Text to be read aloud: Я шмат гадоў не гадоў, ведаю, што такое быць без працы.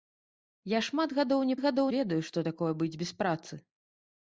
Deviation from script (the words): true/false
false